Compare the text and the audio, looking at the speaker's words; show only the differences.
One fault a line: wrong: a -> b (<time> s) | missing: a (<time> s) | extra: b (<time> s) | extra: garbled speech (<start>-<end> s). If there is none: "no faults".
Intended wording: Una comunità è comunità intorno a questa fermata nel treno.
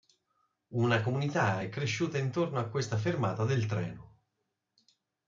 wrong: comunità -> cresciuta (1.7 s)
wrong: nel -> del (3.4 s)